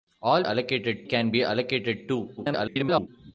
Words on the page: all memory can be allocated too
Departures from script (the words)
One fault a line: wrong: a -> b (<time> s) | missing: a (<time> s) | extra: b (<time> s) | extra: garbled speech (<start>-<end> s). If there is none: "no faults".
wrong: memory -> allocated (0.4 s)
extra: garbled speech (2.4-3.1 s)